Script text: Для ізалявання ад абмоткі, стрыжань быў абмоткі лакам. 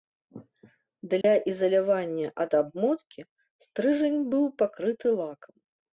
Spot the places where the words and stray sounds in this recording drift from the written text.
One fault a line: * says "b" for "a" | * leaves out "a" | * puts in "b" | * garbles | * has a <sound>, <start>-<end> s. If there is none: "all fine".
* has a dropout, 1.2-1.2 s
* says "пакрыты" for "абмоткі"